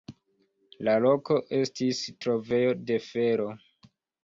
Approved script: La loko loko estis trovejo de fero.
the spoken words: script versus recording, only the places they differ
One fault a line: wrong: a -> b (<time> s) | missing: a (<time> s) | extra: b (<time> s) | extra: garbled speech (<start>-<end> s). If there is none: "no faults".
missing: loko (1.4 s)